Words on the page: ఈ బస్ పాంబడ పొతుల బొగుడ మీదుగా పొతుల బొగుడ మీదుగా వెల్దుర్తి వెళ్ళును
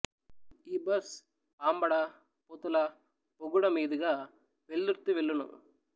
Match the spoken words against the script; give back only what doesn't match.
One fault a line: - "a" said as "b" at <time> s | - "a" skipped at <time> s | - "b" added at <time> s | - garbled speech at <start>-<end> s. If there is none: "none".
- "పొతుల బొగుడ మీదుగా" skipped at 4.1 s